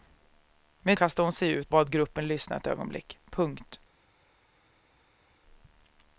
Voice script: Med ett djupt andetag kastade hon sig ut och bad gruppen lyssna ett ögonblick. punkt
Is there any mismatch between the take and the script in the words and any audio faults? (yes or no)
yes